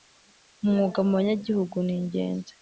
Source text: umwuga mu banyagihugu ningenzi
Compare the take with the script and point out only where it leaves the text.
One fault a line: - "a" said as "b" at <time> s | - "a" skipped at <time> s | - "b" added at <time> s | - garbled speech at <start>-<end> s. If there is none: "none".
none